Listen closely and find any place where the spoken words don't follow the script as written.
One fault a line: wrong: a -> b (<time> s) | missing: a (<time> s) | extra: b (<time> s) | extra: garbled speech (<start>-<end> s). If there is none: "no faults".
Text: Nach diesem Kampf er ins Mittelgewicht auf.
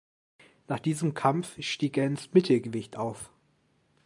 extra: stieg (1.6 s)